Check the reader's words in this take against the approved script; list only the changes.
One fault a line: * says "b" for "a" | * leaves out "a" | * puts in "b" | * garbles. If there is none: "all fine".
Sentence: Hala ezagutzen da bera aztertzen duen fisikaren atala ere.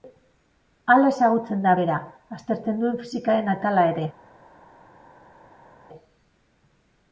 all fine